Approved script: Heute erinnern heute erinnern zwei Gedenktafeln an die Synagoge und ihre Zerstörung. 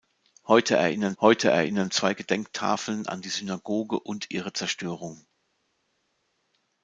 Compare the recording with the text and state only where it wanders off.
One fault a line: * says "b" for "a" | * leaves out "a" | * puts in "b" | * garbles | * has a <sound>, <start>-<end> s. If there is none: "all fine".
all fine